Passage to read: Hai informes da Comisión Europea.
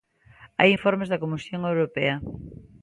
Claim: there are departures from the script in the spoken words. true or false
false